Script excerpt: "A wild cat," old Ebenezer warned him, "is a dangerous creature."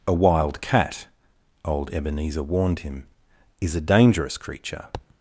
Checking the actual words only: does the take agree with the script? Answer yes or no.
yes